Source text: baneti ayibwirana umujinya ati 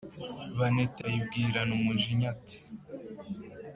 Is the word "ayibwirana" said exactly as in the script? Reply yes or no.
yes